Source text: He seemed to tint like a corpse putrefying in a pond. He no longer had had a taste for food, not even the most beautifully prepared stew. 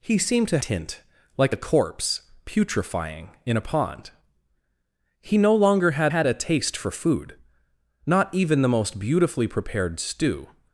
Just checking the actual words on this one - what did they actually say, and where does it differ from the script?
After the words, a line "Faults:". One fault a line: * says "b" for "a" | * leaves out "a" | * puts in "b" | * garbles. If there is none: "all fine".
He seemed to tint like a corpse putrefying in a pond. He no longer had had a taste for food, not even the most beautifully prepared stew.
Faults:
all fine